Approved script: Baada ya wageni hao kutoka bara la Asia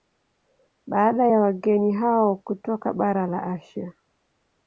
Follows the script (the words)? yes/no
yes